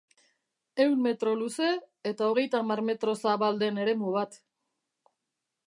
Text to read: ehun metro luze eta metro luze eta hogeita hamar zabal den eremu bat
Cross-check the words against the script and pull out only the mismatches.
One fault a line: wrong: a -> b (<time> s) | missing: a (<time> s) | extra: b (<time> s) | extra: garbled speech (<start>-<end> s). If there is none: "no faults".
missing: metro luze eta (2.3 s)
extra: metro (2.9 s)